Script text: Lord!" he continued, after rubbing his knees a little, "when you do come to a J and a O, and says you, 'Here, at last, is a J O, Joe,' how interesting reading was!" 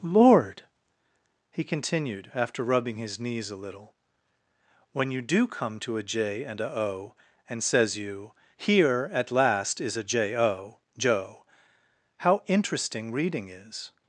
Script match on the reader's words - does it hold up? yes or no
no